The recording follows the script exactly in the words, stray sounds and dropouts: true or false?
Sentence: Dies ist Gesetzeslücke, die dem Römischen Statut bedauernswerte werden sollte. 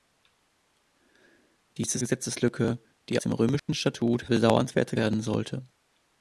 false